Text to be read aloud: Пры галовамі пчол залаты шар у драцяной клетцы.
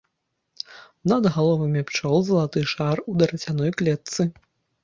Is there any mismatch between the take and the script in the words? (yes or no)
yes